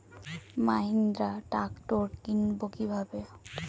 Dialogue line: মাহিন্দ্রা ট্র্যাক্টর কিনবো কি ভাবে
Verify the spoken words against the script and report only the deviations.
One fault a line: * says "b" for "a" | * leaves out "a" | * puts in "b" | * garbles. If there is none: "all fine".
all fine